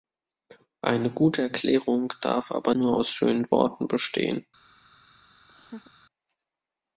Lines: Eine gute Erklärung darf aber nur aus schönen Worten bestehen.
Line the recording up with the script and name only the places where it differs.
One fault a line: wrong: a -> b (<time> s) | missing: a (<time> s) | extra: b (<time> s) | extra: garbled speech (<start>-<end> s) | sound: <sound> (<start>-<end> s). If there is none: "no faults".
sound: laugh (5.5-5.9 s)